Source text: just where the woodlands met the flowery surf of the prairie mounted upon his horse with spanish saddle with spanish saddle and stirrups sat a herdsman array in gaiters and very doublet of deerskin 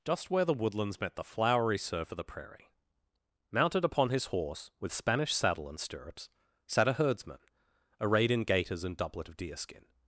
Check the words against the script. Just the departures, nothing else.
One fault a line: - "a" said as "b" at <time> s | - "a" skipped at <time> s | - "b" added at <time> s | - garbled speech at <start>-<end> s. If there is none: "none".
- "with spanish saddle" skipped at 5.7 s
- "array" said as "arrayed" at 8.0 s
- "very" skipped at 9.0 s